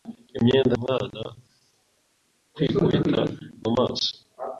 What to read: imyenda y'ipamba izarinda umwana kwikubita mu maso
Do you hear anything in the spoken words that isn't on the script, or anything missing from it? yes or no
yes